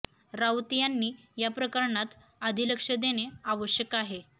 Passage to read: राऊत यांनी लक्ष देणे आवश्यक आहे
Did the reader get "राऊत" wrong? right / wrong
right